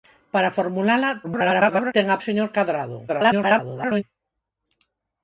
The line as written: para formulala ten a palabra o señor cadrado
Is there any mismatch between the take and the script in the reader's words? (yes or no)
yes